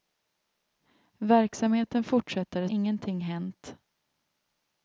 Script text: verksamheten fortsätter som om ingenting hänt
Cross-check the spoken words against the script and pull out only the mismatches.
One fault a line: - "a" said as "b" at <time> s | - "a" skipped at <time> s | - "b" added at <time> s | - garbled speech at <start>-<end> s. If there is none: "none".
- "som om" skipped at 2.7 s